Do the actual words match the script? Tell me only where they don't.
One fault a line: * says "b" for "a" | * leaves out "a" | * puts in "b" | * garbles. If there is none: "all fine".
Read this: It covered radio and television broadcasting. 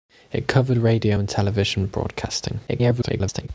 * garbles